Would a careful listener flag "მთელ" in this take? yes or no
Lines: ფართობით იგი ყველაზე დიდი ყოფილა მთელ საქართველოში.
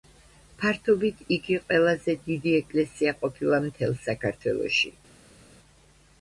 no